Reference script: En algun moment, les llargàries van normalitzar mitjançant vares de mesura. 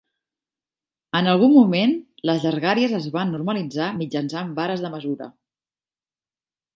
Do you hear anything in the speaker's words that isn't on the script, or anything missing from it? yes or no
yes